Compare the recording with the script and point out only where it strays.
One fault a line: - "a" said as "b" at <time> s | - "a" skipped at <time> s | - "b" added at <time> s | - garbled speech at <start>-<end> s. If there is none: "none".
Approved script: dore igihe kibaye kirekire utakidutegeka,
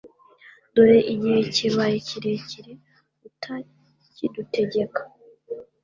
none